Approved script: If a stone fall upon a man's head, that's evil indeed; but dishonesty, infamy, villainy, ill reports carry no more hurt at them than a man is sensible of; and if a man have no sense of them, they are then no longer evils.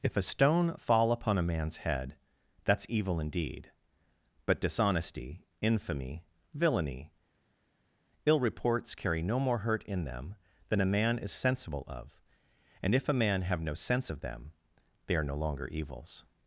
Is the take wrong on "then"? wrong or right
wrong